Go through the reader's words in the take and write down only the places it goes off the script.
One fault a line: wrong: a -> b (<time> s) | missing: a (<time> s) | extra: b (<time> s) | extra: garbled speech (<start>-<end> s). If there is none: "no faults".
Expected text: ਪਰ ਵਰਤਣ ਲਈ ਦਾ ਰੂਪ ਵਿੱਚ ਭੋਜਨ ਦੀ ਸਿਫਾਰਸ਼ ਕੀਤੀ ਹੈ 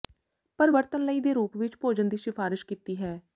wrong: ਦਾ -> ਦੇ (1.2 s)